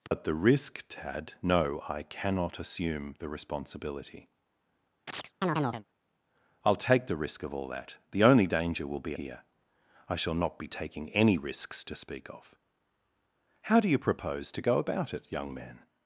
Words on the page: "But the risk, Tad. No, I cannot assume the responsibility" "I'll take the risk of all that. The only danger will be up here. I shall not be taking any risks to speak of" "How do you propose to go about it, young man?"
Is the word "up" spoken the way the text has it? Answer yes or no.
no